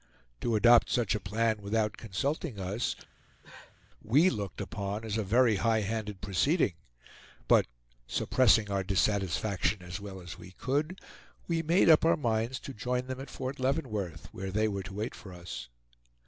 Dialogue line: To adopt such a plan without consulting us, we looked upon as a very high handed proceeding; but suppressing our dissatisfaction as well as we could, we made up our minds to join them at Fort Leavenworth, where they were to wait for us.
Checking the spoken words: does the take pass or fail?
pass